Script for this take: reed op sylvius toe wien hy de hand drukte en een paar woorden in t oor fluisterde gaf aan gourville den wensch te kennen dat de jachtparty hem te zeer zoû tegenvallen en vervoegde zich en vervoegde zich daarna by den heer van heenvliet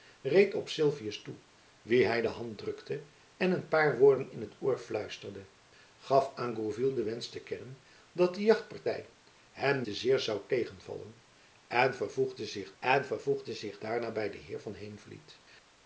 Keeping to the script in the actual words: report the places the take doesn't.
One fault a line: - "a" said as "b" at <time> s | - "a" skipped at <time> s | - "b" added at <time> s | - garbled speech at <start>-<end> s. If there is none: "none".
none